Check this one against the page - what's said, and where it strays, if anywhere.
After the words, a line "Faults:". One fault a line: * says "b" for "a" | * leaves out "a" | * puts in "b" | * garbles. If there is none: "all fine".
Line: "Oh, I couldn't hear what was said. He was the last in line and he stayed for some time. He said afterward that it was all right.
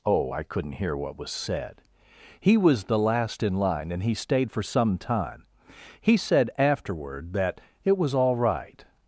"Oh, I couldn't hear what was said. He was the last in line and he stayed for some time. He said afterward that it was all right.
Faults:
all fine